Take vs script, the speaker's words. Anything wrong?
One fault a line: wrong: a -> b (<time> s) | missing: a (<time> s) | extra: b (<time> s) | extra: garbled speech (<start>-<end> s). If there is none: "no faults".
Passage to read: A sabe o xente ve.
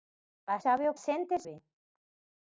no faults